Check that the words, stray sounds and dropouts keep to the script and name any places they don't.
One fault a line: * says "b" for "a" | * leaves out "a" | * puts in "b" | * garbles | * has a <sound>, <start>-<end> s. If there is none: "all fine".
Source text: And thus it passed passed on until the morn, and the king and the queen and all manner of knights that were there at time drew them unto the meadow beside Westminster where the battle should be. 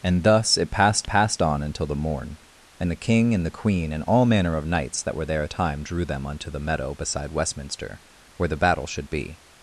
all fine